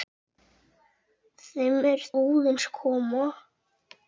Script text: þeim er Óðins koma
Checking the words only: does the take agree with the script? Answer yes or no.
yes